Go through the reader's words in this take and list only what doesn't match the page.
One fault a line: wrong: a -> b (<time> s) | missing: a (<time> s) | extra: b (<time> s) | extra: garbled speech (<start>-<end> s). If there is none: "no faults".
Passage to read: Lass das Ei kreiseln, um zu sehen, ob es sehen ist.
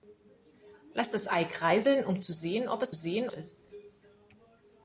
no faults